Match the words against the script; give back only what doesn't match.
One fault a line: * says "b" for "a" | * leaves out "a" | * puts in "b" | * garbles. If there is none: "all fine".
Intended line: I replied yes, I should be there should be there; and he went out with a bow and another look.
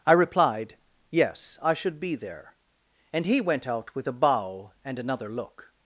* leaves out "should be there"